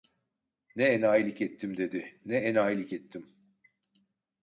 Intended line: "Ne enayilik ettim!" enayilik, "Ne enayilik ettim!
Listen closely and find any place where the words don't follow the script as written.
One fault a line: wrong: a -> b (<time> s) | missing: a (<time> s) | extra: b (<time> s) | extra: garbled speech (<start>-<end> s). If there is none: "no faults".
wrong: enayilik -> dedi (1.8 s)